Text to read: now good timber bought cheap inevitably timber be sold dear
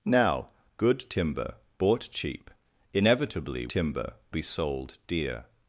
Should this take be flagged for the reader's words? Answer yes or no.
no